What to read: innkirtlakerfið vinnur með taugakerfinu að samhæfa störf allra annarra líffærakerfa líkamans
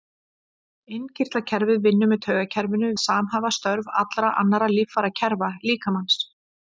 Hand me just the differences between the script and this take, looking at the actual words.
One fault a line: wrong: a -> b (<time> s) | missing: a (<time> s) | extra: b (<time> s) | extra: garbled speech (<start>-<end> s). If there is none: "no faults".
no faults